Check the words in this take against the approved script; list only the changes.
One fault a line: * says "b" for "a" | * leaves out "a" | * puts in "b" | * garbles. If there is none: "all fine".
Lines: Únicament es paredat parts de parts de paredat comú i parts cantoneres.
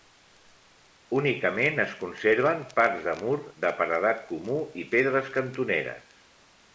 * says "conserven" for "paredat"
* says "mur" for "parts"
* says "pedres" for "parts"